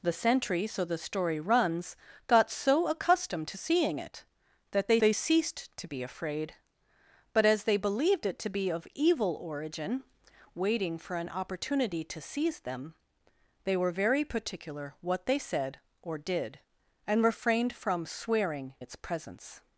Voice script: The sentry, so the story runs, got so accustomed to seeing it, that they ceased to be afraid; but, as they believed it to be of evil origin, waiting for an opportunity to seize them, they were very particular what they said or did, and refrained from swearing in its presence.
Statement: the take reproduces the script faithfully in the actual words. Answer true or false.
false